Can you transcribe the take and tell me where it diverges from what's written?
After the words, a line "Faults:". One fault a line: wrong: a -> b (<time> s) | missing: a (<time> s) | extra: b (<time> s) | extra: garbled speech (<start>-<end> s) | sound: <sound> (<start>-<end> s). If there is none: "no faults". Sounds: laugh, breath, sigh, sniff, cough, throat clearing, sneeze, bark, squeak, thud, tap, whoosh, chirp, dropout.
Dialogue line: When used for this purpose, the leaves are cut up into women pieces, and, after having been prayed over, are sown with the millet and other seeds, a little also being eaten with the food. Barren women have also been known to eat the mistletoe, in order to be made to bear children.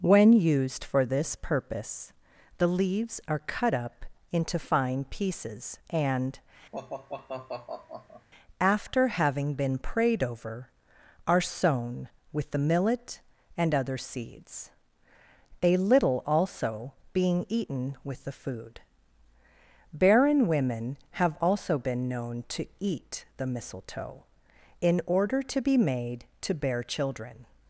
When used for this purpose, the leaves are cut up into fine pieces, and, after having been prayed over, are sown with the millet and other seeds, a little also being eaten with the food. Barren women have also been known to eat the mistletoe, in order to be made to bear children.
Faults:
wrong: women -> fine (4.6 s)
sound: sigh (6.7-8.3 s)